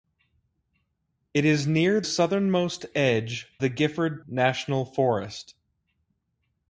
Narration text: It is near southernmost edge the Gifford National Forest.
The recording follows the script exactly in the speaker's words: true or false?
true